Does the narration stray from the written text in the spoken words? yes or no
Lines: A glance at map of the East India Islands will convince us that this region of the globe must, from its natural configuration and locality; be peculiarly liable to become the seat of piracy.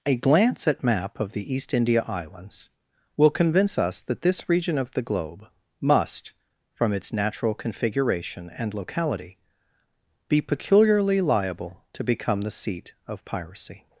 no